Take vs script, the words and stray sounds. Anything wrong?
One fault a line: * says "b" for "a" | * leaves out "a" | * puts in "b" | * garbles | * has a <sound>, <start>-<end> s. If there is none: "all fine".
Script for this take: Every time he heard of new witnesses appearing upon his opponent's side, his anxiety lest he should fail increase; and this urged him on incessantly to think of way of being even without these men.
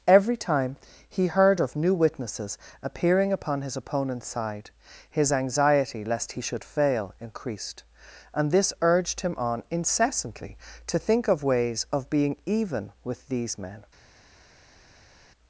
* says "increased" for "increase"
* says "ways" for "way"
* says "with" for "without"